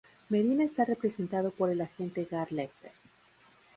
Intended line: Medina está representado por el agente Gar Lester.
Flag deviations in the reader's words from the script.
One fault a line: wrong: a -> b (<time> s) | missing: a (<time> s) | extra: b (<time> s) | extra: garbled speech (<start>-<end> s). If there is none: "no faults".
no faults